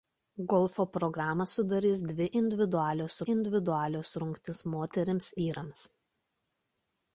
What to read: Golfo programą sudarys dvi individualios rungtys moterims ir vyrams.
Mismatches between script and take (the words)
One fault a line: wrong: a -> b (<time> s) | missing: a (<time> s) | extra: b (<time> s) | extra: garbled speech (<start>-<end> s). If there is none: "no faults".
extra: individualios (3.3 s)
missing: ir (5.3 s)